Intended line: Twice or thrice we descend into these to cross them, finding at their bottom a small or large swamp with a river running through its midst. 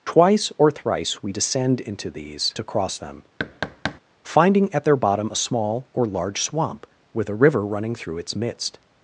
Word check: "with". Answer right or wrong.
right